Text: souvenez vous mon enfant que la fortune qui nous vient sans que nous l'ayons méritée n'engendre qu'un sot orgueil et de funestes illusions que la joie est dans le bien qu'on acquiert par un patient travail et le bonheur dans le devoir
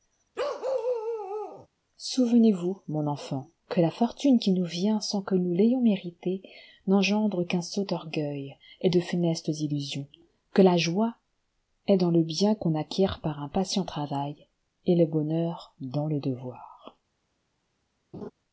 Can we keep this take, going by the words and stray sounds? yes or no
no